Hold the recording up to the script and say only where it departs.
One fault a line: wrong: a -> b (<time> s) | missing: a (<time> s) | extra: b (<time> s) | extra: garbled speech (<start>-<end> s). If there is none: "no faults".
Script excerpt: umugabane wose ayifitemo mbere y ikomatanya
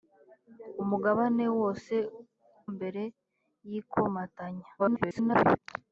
missing: ayifitemo (1.9 s)
extra: garbled speech (4.8-5.6 s)